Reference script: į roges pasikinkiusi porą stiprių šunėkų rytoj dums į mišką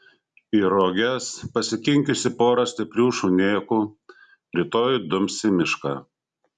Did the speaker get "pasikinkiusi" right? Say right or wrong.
right